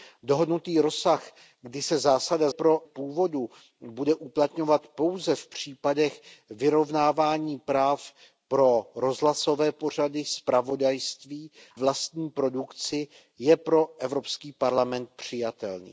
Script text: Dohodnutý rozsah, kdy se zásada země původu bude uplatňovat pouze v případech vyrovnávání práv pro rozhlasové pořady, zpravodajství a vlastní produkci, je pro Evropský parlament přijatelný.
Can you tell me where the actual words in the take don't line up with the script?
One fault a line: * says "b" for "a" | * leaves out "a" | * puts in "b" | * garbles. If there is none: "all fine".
* says "pro" for "země"
* leaves out "a"